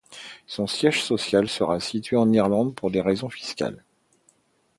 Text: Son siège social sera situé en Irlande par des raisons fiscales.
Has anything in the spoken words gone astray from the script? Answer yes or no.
yes